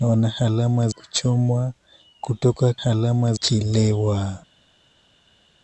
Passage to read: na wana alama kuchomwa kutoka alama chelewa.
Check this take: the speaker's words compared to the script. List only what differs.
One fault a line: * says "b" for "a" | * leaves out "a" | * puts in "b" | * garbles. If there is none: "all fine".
all fine